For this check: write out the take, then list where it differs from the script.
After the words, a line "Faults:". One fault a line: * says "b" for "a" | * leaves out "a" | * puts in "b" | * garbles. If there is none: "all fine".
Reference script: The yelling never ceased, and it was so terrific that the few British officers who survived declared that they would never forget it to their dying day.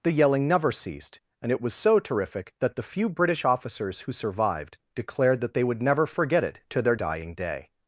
The yelling never ceased, and it was so terrific that the few British officers who survived declared that they would never forget it to their dying day.
Faults:
all fine